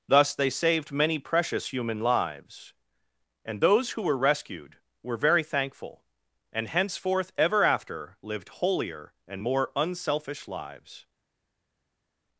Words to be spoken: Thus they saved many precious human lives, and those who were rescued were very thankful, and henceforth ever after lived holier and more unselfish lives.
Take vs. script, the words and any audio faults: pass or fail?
pass